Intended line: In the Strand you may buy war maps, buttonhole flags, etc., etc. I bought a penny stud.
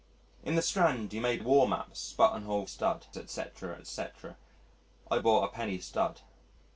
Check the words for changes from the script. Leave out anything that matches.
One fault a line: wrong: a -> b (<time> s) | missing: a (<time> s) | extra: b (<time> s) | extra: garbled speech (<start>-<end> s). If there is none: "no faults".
missing: buy (1.4 s)
wrong: flags -> stud (2.7 s)